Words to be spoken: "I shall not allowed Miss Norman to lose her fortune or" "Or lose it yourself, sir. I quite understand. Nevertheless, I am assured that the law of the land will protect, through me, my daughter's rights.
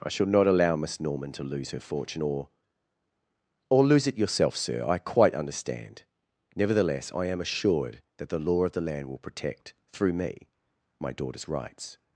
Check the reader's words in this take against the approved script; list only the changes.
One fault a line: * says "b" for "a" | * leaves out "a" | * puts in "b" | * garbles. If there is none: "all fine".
* says "allow" for "allowed"